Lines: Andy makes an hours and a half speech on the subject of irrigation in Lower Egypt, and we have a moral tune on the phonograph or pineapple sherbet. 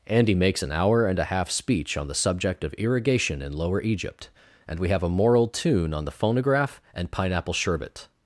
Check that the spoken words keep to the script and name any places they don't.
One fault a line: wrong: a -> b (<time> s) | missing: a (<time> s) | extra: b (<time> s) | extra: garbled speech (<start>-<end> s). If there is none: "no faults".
wrong: hours -> hour (0.7 s)
wrong: or -> and (6.9 s)